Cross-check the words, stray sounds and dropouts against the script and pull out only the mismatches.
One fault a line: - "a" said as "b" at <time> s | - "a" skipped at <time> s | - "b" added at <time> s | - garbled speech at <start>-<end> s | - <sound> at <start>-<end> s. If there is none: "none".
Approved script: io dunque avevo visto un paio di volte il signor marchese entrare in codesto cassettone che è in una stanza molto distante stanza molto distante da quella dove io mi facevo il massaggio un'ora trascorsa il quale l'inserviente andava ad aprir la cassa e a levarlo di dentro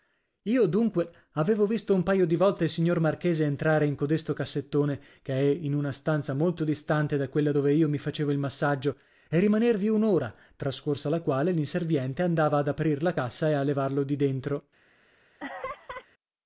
- "stanza molto distante" skipped at 7.2 s
- "e rimanervi" added at 9.3 s
- "il" said as "la" at 11.1 s
- laugh at 15.4-16.1 s